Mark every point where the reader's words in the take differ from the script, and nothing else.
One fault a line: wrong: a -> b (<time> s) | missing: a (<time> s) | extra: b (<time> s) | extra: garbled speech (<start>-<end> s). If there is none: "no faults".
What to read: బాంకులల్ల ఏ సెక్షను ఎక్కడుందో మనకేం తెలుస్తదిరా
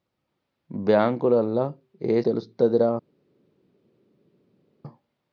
missing: సెక్షను ఎక్కడుందో మనకేం (2.2 s)